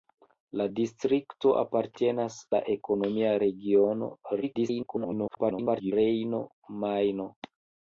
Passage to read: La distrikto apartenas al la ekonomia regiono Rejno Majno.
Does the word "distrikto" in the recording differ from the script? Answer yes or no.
no